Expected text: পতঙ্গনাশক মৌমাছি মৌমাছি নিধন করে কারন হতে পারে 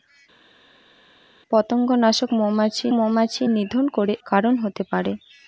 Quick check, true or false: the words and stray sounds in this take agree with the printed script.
true